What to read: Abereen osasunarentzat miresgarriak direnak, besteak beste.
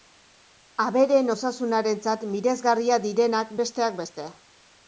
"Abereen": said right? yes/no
yes